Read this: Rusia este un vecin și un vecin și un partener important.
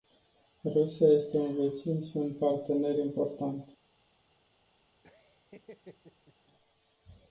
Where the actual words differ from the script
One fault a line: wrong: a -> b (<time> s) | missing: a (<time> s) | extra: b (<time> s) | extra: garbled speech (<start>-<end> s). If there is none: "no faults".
missing: vecin și un (2.3 s)